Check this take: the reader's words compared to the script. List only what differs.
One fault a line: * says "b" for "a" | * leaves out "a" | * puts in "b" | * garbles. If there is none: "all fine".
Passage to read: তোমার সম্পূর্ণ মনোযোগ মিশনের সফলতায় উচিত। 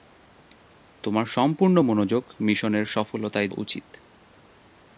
all fine